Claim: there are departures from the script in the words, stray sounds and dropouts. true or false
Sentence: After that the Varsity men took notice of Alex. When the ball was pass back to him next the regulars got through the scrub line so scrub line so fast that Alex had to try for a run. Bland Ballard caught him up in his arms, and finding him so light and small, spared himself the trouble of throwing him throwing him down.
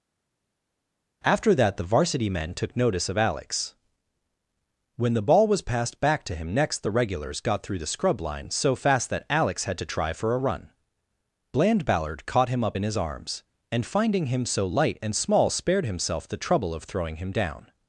true